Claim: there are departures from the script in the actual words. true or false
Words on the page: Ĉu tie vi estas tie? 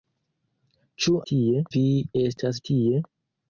false